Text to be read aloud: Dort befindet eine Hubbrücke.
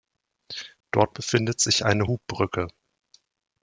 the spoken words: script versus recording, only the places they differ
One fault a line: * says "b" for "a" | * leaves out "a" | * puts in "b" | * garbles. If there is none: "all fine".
* puts in "sich"